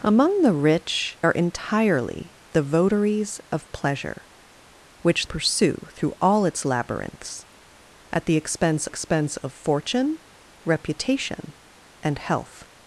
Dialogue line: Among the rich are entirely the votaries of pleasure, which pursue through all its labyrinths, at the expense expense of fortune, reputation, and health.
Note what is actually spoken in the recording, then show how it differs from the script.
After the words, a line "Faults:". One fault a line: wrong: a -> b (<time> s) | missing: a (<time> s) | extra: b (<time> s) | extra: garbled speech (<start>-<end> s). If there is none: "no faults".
Among the rich are entirely the votaries of pleasure, which pursue through all its labyrinths, at the expense expense of fortune, reputation, and health.
Faults:
no faults